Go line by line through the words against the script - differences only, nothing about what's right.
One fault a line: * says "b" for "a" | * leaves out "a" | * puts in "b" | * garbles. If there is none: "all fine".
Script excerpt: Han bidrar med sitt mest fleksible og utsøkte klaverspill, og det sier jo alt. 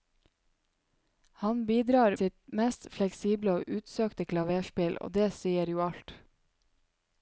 * leaves out "med"